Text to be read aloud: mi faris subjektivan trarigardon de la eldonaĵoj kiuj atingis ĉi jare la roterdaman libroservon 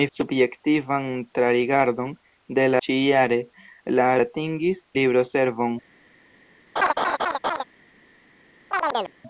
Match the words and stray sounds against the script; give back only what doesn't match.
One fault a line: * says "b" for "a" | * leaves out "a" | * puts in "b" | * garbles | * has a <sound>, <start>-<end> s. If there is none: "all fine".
* leaves out "faris"
* leaves out "eldonaĵoj kiuj atingis"
* says "atingis" for "roterdaman"
* has a laugh, 6.8-7.6 s
* has a chirp, 8.7-9.1 s